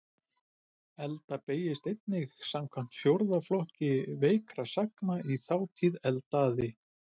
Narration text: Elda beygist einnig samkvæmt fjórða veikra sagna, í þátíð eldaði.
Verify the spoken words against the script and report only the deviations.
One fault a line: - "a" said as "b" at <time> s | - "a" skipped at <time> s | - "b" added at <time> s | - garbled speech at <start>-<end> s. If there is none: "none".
- "flokki" added at 3.5 s